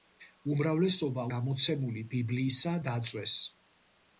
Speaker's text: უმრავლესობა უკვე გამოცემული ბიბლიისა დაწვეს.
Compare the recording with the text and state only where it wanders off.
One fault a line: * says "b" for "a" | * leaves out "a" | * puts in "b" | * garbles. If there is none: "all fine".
* leaves out "უკვე"